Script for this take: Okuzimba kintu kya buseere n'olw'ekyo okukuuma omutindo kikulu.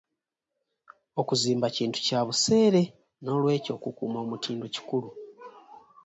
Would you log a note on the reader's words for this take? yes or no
no